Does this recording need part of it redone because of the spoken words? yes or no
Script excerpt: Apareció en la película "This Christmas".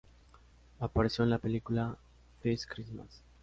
no